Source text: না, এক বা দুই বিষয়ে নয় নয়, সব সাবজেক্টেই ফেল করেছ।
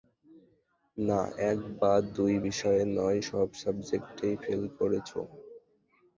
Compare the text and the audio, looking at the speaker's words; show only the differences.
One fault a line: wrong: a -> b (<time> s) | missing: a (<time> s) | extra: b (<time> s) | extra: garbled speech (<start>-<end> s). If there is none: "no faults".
missing: নয় (3.2 s)